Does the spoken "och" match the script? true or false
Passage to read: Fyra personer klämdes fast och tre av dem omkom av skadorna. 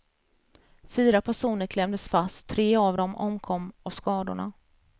false